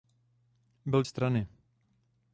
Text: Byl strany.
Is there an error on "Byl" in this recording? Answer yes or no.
no